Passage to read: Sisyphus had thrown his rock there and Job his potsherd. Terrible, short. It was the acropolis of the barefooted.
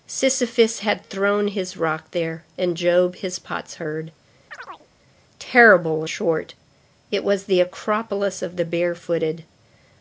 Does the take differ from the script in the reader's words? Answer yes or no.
no